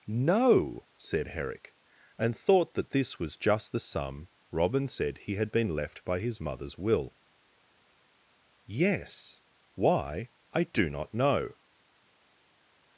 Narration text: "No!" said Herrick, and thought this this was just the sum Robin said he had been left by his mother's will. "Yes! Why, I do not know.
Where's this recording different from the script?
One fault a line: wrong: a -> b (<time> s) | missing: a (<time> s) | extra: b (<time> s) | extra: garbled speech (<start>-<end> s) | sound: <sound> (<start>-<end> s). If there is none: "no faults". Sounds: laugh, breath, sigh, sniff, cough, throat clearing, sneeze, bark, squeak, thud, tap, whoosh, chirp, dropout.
wrong: this -> that (2.7 s)